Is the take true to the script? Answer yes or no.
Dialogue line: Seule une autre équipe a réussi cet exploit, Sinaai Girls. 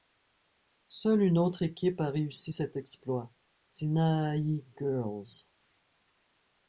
yes